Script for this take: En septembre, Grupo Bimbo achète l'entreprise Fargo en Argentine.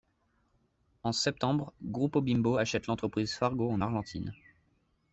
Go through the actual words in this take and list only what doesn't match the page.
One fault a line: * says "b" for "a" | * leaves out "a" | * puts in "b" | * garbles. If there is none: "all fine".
all fine